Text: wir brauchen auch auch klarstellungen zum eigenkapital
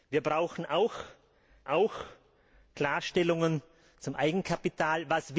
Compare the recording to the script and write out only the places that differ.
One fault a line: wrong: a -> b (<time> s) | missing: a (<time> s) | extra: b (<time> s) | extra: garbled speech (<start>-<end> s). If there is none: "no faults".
no faults